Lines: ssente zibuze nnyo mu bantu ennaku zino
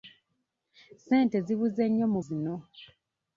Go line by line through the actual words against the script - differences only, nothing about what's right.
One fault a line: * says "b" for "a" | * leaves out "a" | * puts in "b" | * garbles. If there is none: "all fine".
* leaves out "bantu ennaku"